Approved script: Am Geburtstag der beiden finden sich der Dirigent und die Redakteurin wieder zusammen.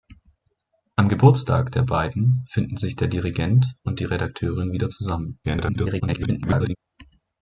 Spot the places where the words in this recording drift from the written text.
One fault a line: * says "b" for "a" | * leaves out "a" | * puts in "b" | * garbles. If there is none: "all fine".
* garbles